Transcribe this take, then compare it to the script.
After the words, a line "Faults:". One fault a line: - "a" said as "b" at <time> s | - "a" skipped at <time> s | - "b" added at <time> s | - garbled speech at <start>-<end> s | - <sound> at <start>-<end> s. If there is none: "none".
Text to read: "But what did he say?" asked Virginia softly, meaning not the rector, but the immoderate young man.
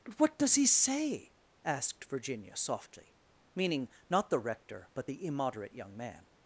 "But what does he say?" asked Virginia softly, meaning not the rector, but the immoderate young man.
Faults:
- "did" said as "does" at 0.4 s